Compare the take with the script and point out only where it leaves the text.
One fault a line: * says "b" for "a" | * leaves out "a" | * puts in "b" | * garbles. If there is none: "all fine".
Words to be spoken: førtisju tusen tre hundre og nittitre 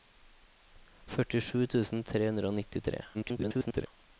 * garbles